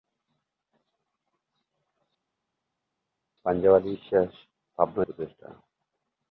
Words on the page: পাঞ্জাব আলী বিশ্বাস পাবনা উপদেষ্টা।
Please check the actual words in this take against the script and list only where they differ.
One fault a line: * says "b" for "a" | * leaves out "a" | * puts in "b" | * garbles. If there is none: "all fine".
all fine